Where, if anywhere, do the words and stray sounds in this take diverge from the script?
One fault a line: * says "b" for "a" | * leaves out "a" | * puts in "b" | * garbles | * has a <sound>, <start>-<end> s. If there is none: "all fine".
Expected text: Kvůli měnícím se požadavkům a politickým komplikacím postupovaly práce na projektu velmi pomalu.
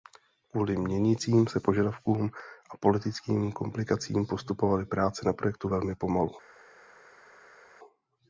all fine